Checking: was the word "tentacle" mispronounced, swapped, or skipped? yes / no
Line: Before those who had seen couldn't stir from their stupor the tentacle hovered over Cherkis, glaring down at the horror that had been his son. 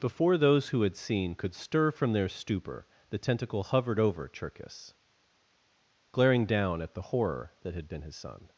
no